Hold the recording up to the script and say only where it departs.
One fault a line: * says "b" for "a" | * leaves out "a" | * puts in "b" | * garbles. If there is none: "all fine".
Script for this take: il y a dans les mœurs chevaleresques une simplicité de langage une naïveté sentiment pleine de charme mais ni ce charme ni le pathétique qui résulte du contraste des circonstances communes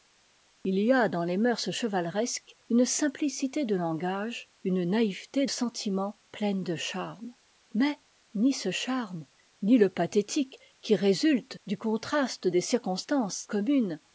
all fine